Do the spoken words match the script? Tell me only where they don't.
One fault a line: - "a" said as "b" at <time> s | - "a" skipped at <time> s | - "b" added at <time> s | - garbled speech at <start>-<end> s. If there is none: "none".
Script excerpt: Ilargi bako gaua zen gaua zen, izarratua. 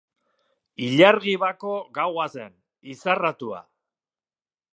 - "gaua zen" skipped at 2.5 s